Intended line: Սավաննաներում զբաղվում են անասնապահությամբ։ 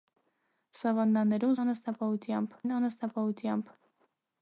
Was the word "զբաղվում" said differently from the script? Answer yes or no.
yes